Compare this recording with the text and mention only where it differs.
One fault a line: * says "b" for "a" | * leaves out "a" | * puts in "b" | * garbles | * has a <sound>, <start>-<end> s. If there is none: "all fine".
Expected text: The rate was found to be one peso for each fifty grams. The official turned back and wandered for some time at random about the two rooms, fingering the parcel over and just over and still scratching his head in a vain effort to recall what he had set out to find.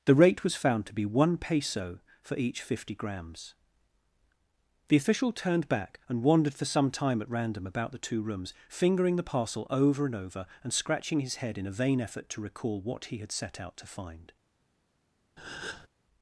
* leaves out "just"
* leaves out "still"
* has a breath, 15.4-15.9 s